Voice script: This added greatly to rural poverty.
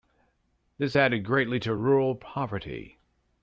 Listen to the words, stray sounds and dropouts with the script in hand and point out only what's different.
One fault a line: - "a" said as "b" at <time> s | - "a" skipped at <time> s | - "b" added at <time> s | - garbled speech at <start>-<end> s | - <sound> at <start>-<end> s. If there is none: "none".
none